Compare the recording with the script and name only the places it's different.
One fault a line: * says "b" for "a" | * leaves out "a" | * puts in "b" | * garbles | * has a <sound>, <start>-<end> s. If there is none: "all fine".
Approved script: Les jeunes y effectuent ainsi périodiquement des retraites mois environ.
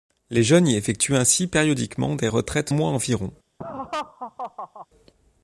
* has a laugh, 3.6-4.9 s